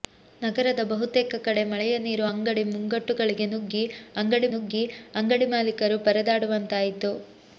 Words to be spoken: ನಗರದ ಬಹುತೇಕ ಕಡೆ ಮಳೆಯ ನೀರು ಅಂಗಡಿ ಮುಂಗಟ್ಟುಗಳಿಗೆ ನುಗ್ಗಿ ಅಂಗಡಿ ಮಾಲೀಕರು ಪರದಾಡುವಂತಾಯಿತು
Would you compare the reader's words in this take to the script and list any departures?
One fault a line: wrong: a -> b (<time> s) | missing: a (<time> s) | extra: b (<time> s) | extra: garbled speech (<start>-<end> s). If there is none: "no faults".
extra: ನುಗ್ಗಿ ಅಂಗಡಿ (4.5 s)